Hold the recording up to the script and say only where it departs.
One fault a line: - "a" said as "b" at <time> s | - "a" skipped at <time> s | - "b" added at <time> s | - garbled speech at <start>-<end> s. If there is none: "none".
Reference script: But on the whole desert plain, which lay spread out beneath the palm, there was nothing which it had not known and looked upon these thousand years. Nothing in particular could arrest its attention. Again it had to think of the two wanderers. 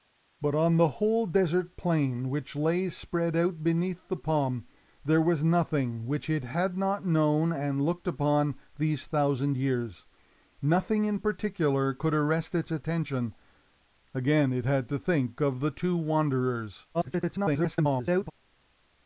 - garbled speech at 16.9-18.3 s